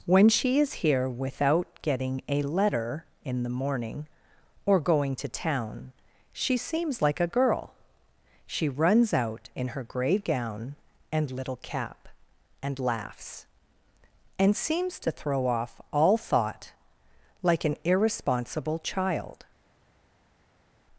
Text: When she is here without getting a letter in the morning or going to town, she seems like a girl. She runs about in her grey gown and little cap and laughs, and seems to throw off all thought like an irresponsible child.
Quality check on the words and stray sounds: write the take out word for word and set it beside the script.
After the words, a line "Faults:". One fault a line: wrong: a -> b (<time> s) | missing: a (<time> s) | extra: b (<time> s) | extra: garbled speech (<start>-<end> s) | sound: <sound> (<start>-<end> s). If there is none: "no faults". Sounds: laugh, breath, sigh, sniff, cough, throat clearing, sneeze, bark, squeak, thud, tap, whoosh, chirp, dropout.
When she is here without getting a letter in the morning or going to town, she seems like a girl. She runs out in her grey gown and little cap and laughs, and seems to throw off all thought like an irresponsible child.
Faults:
wrong: about -> out (9.1 s)